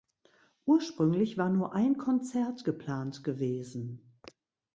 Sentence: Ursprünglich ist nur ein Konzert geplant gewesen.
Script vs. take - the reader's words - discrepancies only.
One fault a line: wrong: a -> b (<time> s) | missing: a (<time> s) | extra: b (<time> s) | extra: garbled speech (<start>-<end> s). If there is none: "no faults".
wrong: ist -> war (1.4 s)